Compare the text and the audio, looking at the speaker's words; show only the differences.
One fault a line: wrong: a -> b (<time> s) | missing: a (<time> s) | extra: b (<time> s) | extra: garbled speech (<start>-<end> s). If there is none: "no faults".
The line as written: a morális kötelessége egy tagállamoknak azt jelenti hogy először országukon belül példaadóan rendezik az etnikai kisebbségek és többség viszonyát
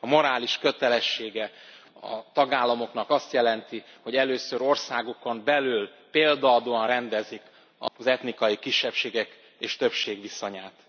wrong: egy -> a (2.0 s)